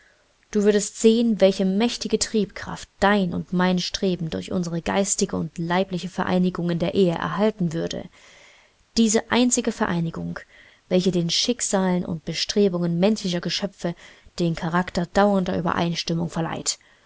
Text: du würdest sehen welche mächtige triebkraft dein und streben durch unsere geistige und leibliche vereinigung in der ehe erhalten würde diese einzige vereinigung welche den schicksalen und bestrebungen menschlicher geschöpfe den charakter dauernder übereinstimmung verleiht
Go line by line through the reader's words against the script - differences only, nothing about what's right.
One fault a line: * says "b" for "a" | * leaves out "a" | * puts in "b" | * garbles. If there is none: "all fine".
* puts in "mein"